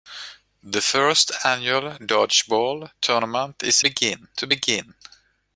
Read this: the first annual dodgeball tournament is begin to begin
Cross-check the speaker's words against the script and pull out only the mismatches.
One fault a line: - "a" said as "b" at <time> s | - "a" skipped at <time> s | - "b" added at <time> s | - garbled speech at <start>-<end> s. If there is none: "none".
none